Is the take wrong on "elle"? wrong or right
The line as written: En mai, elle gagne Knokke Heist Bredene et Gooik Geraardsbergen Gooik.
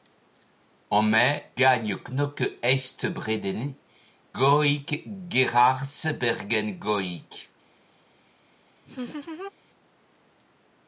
wrong